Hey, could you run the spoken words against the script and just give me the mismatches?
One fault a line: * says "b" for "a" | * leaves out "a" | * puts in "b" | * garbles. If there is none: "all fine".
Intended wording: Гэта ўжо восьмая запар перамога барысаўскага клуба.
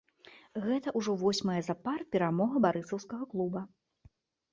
all fine